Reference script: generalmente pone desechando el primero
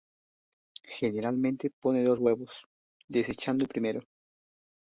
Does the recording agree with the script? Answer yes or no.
no